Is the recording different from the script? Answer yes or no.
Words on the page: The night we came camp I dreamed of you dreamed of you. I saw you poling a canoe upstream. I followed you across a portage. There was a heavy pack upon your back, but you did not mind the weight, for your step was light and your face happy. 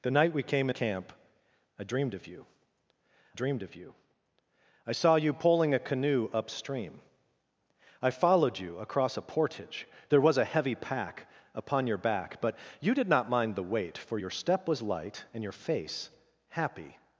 no